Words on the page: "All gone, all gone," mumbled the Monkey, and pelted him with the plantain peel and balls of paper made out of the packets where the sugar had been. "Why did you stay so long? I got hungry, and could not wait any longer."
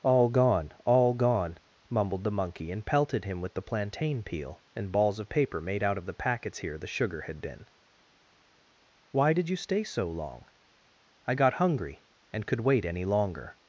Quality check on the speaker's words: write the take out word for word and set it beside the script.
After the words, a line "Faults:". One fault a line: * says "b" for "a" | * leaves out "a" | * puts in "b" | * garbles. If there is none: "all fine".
"All gone, all gone," mumbled the Monkey, and pelted him with the plantain peel and balls of paper made out of the packets here the sugar had been. "Why did you stay so long? I got hungry, and could wait any longer."
Faults:
* says "here" for "where"
* leaves out "not"